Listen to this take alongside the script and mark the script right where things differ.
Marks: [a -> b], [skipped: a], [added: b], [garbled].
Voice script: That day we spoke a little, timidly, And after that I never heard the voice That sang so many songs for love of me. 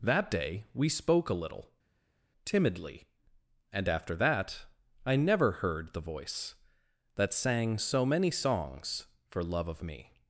That day we spoke a little, timidly, And after that I never heard the voice That sang so many songs for love of me.